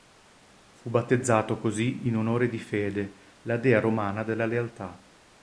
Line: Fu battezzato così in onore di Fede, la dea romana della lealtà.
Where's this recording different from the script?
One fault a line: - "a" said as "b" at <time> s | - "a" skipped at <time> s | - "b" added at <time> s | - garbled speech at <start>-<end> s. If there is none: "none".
none